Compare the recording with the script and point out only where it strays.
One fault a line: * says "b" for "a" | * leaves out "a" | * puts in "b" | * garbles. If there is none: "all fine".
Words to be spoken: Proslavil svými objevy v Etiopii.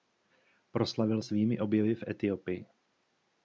all fine